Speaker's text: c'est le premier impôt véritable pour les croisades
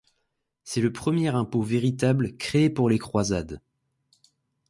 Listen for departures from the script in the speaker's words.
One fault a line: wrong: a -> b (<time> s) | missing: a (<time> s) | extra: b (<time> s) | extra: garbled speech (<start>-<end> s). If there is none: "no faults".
extra: créé (2.4 s)